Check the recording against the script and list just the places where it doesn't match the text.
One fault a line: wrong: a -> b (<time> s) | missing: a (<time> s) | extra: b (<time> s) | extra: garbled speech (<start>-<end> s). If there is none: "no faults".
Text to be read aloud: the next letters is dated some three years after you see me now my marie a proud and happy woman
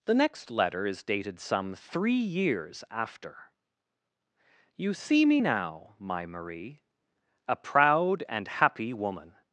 wrong: letters -> letter (0.5 s)